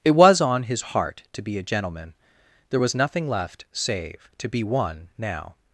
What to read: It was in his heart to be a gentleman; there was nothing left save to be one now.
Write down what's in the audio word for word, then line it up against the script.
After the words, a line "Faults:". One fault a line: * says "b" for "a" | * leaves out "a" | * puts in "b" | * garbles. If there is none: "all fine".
It was on his heart to be a gentleman; there was nothing left save to be one now.
Faults:
* says "on" for "in"